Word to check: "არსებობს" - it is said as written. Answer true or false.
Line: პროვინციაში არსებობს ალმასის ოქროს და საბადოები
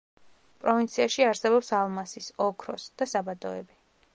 true